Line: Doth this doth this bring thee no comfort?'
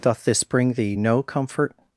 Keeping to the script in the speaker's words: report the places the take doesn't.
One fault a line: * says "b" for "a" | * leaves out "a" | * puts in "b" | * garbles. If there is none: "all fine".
* leaves out "doth this"